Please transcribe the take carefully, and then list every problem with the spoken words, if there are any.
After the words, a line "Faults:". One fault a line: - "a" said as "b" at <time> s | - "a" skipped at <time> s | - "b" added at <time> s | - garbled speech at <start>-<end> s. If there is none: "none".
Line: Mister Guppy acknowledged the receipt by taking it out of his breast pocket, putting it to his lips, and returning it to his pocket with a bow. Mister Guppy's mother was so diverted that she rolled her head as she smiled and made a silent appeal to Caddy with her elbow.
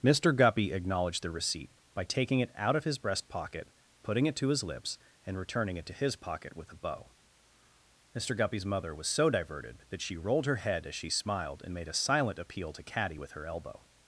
Mister Guppy acknowledged the receipt by taking it out of his breast pocket, putting it to his lips, and returning it to his pocket with a bow. Mister Guppy's mother was so diverted that she rolled her head as she smiled and made a silent appeal to Caddy with her elbow.
Faults:
none